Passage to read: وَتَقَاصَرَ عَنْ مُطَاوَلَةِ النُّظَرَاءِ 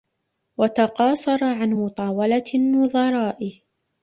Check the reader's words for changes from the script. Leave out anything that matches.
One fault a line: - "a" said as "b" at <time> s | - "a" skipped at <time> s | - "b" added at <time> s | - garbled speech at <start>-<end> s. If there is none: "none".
none